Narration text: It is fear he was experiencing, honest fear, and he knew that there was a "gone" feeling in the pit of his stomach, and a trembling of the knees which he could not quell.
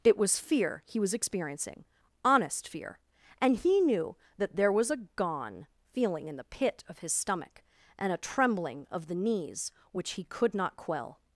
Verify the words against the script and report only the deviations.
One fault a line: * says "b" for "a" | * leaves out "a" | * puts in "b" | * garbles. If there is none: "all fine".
* says "was" for "is"